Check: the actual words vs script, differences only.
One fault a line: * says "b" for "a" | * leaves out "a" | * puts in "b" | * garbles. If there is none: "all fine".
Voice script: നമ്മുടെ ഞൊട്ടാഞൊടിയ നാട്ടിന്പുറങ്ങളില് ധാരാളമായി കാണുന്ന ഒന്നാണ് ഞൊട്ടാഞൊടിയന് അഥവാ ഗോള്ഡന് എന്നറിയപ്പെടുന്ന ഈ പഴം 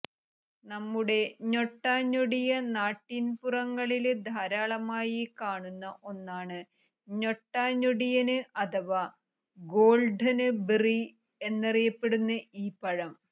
* puts in "ബെറി"